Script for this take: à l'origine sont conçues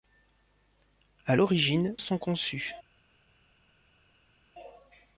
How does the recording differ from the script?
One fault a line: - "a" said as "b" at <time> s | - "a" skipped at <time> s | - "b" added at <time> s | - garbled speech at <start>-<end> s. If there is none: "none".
none